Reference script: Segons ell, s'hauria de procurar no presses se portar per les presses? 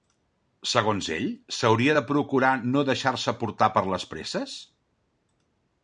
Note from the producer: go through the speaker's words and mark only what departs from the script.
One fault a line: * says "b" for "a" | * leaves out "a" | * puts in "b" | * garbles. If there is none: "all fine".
* says "deixar" for "presses"